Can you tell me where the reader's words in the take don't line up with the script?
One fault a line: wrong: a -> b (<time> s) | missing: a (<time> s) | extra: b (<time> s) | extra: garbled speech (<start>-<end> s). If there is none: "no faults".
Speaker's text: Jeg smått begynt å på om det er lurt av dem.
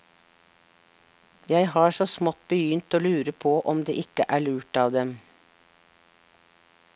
extra: har så (1.7 s)
extra: lure (3.0 s)
extra: ikke (4.0 s)